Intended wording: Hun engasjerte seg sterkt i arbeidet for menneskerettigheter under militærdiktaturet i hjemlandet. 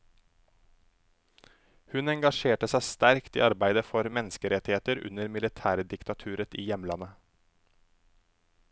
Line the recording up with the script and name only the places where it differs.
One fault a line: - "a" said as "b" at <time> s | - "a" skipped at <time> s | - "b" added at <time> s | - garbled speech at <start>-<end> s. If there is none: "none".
none